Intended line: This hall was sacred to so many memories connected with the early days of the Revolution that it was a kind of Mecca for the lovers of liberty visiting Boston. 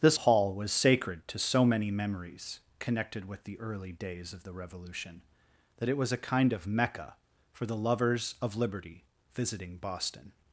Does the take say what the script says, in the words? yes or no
yes